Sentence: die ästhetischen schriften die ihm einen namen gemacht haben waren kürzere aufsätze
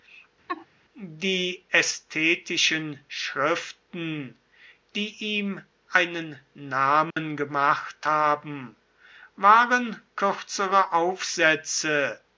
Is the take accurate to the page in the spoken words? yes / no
yes